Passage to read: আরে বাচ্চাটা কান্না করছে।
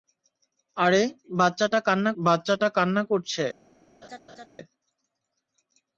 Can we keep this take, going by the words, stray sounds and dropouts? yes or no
no